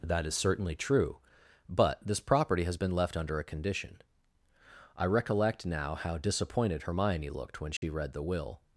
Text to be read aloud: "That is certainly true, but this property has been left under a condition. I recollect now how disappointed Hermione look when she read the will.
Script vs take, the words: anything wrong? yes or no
yes